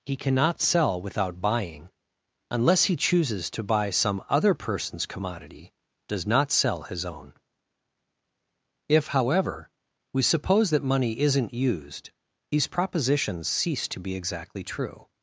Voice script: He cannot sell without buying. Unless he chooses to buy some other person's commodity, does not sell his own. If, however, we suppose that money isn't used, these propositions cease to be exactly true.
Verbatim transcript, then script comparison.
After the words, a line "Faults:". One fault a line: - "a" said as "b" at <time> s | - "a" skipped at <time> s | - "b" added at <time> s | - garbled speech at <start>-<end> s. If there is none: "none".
He cannot sell without buying. Unless he chooses to buy some other person's commodity, does not sell his own. If, however, we suppose that money isn't used, these propositions cease to be exactly true.
Faults:
none